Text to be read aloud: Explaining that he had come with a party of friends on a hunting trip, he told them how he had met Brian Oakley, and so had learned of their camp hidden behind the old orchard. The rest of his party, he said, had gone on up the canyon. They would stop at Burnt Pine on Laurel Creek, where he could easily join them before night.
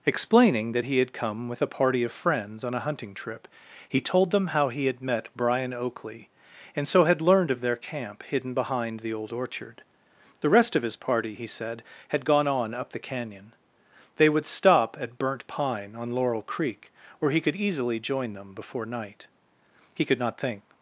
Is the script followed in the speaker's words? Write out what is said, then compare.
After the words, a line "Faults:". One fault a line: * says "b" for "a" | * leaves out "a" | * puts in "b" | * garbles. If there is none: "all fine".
Explaining that he had come with a party of friends on a hunting trip, he told them how he had met Brian Oakley, and so had learned of their camp hidden behind the old orchard. The rest of his party, he said, had gone on up the canyon. They would stop at Burnt Pine on Laurel Creek, where he could easily join them before night. He could not think
Faults:
* puts in "He could not think"